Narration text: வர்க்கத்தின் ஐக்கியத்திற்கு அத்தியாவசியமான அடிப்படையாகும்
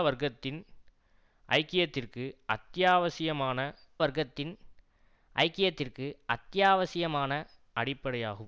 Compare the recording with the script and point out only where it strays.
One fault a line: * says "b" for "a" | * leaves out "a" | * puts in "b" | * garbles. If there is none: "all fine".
* puts in "வர்க்கத்தின் ஐக்கியத்திற்கு அத்தியாவசியமான"